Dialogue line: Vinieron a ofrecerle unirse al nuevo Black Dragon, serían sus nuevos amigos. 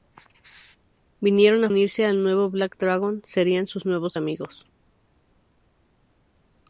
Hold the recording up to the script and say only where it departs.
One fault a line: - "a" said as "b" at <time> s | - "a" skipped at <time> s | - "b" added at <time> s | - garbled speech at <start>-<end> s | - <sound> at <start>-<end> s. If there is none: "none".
- "ofrecerle" skipped at 1.7 s